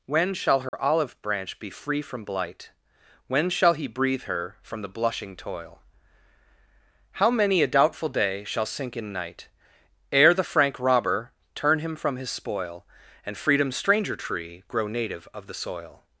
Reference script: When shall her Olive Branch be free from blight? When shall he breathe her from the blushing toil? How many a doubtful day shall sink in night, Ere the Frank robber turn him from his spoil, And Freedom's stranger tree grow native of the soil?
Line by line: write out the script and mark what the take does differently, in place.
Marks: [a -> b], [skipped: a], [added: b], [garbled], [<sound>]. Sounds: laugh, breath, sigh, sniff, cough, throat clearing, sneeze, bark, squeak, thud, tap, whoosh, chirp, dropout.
When shall her [dropout] Olive Branch be free from blight? When shall he breathe her from the blushing toil? How many a doubtful day shall sink in night, Ere the Frank robber turn him from his spoil, And Freedom's stranger tree grow native of the soil?